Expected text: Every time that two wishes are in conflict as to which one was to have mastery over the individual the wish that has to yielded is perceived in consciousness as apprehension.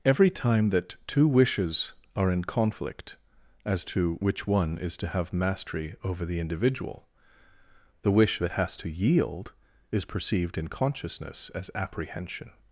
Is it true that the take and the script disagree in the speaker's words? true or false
true